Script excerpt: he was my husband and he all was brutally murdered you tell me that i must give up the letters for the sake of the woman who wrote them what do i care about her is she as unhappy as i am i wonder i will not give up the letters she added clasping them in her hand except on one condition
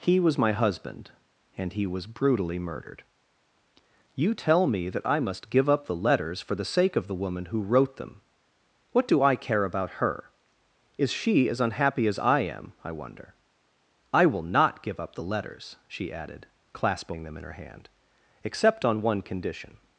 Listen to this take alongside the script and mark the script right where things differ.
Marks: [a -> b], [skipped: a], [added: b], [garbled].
he was my husband and he [skipped: all] was brutally murdered you tell me that i must give up the letters for the sake of the woman who wrote them what do i care about her is she as unhappy as i am i wonder i will not give up the letters she added clasping them in her hand except on one condition